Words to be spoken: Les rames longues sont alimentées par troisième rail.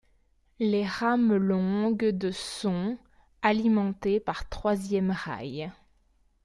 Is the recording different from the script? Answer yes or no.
yes